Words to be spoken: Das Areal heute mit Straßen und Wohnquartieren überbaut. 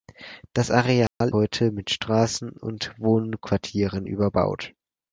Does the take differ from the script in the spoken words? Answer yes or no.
no